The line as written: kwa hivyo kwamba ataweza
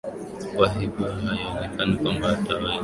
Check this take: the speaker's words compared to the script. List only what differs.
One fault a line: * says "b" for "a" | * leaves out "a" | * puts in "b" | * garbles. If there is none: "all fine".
* puts in "haionekani"